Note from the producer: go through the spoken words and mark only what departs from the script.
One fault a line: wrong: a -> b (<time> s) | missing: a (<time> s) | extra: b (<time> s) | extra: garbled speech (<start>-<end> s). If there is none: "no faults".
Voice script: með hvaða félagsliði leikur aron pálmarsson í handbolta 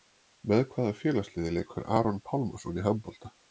no faults